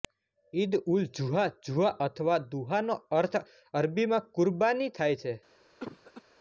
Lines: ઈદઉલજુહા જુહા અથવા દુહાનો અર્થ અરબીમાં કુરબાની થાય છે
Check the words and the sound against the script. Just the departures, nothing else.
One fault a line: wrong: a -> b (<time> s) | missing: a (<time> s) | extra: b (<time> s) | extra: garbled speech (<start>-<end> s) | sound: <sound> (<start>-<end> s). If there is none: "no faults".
sound: cough (5.8-6.2 s)